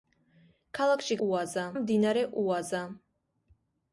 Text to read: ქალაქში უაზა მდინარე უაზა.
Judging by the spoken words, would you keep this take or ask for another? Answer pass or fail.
pass